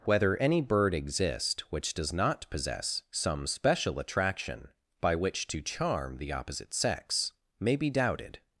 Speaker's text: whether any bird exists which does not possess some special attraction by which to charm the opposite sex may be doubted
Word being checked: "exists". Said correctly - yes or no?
no